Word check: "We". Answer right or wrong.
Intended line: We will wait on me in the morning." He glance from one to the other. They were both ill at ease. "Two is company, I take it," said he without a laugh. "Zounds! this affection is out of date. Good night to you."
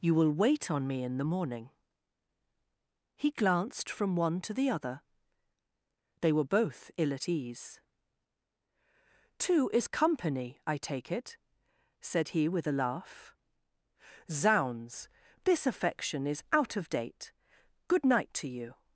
wrong